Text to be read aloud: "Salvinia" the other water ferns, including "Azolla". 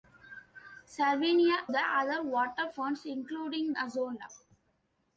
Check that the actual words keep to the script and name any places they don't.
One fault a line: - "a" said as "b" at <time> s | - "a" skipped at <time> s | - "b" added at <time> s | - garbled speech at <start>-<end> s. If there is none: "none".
none